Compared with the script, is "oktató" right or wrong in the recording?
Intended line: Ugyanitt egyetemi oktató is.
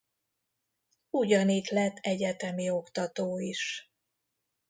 right